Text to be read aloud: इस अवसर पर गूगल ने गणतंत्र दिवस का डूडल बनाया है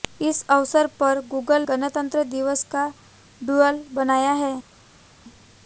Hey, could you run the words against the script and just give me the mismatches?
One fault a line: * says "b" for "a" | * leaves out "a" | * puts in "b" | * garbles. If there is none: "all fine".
* leaves out "ने"